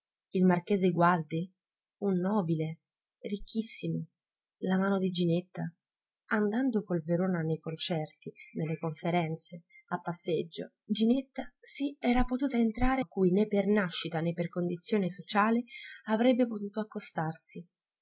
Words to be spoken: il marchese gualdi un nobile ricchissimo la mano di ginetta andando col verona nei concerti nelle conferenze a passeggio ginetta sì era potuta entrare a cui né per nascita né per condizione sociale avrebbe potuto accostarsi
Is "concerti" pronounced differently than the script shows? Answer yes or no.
no